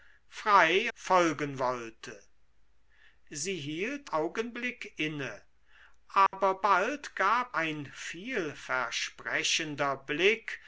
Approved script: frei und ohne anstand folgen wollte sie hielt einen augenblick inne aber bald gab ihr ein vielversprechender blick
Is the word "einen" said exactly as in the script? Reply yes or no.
no